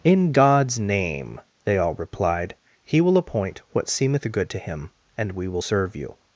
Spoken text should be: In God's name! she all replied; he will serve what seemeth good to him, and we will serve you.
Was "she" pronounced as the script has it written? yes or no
no